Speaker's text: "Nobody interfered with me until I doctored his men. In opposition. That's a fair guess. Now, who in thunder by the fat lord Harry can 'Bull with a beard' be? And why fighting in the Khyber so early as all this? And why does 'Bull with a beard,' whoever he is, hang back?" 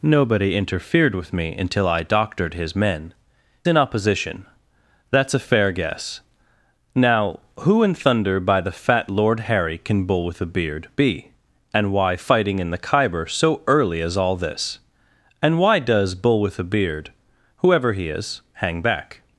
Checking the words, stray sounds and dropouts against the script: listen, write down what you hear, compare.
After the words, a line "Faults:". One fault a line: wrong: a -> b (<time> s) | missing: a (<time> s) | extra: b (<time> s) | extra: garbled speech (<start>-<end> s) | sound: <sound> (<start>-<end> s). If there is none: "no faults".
"Nobody interfered with me until I doctored his men. In opposition. That's a fair guess. Now, who in thunder by the fat lord Harry can 'Bull with a beard' be? And why fighting in the Khyber so early as all this? And why does 'Bull with a beard,' whoever he is, hang back?"
Faults:
no faults